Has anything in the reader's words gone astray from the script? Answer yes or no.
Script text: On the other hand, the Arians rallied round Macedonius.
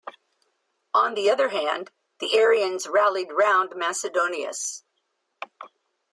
no